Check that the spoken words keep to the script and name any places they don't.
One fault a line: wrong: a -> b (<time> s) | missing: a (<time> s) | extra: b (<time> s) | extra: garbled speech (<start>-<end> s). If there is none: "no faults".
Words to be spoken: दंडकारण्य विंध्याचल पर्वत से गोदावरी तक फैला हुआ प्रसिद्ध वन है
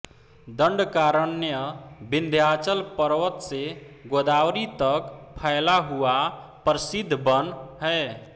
no faults